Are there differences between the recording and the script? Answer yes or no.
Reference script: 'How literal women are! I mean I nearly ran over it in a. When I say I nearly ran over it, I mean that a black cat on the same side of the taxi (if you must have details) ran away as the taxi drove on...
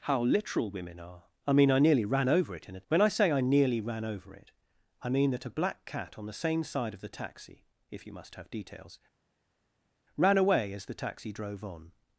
no